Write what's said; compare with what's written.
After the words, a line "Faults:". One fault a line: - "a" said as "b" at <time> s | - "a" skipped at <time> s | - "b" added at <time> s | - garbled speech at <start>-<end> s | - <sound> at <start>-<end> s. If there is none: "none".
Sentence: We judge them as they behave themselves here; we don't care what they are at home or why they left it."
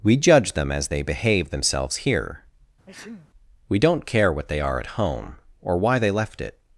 We judge them as they behave themselves here; we don't care what they are at home or why they left it."
Faults:
- sneeze at 2.9-3.3 s